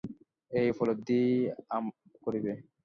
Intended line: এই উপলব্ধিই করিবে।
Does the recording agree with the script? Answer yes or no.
yes